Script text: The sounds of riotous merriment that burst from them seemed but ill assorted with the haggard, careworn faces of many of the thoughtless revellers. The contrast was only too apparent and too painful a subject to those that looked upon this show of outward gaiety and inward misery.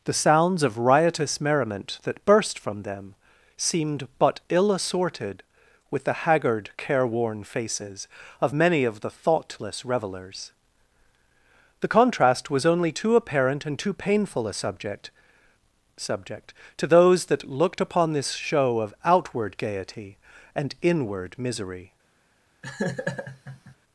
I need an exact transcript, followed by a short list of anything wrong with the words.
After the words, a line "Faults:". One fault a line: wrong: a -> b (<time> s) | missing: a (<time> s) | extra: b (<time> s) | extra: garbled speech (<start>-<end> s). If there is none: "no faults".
The sounds of riotous merriment that burst from them seemed but ill assorted with the haggard, careworn faces of many of the thoughtless revellers. The contrast was only too apparent and too painful a subject subject to those that looked upon this show of outward gaiety and inward misery.
Faults:
extra: subject (16.0 s)